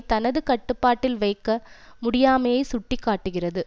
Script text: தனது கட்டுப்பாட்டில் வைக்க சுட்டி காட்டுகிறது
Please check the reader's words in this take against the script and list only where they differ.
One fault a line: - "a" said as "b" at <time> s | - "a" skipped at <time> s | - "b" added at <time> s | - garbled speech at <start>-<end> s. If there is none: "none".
- "முடியாமையை" added at 2.0 s